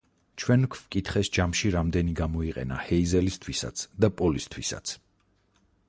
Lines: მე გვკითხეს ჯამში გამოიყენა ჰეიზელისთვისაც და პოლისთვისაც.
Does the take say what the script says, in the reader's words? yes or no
no